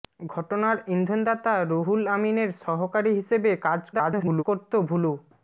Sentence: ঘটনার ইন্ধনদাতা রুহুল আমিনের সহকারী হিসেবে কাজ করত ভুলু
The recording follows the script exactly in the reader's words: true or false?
false